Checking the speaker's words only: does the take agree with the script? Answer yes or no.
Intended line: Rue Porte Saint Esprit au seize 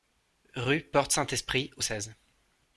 yes